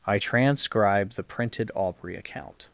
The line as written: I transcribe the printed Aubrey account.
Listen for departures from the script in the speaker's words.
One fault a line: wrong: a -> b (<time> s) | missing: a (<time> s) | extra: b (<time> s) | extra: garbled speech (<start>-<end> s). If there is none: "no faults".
no faults